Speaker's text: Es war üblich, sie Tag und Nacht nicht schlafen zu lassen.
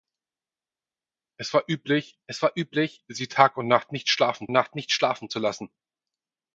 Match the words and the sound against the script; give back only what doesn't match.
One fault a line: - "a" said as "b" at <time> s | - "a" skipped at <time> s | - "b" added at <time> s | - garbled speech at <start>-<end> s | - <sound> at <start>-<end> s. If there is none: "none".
- "es war üblich" added at 2.3 s
- "Nacht nicht schlafen" added at 4.5 s